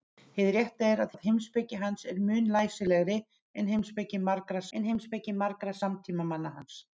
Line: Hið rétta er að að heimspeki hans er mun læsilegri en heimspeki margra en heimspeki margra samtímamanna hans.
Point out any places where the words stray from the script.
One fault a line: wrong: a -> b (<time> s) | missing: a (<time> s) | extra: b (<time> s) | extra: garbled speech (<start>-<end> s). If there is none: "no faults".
no faults